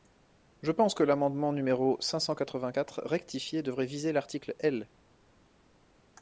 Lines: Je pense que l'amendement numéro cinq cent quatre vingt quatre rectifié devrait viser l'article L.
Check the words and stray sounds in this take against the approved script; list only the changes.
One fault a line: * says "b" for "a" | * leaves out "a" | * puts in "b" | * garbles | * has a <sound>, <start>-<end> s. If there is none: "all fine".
all fine